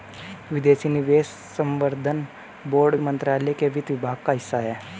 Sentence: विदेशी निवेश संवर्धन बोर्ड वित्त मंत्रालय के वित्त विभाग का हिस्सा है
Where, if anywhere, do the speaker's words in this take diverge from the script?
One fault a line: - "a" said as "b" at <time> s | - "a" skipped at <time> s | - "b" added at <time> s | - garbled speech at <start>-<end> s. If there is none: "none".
- "वित्त" skipped at 3.0 s